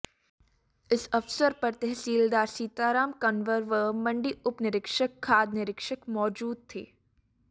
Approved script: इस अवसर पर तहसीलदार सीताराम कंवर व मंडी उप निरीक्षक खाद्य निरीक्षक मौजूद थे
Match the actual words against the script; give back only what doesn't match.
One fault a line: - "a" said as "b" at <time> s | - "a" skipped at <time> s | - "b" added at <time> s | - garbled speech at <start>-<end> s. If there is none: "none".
none